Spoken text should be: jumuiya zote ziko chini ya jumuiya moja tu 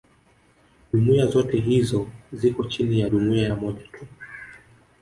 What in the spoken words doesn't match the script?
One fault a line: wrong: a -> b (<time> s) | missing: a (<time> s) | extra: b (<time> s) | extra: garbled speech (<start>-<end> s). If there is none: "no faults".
extra: hizo (1.6 s)